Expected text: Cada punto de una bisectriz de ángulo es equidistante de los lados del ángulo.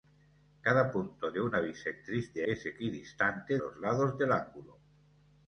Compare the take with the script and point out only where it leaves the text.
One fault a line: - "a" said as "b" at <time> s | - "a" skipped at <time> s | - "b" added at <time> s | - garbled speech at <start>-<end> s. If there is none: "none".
- "ángulo" skipped at 2.5 s
- "de" skipped at 3.6 s